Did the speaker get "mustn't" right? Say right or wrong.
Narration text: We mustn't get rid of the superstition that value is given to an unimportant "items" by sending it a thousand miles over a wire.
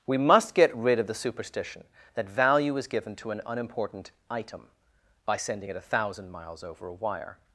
wrong